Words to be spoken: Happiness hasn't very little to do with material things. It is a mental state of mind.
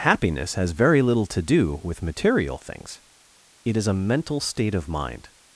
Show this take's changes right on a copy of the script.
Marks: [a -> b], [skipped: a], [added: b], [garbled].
Happiness [hasn't -> has] very little to do with material things. It is a mental state of mind.